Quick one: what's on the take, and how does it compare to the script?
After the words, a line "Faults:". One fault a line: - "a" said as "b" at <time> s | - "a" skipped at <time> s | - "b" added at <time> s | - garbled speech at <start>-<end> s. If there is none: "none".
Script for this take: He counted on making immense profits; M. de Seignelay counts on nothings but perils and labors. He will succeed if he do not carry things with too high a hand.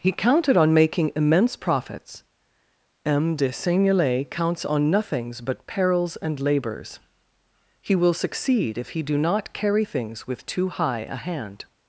He counted on making immense profits; M. de Seignelay counts on nothings but perils and labors. He will succeed if he do not carry things with too high a hand.
Faults:
none